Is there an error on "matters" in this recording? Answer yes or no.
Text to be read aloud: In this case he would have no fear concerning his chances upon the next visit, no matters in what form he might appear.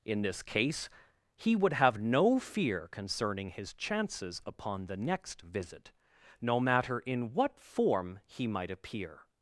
yes